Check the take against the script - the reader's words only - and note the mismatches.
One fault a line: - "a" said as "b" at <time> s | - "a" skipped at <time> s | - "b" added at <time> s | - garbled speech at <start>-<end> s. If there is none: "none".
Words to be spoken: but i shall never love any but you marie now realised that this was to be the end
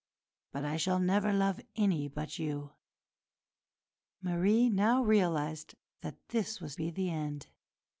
- "to" skipped at 6.8 s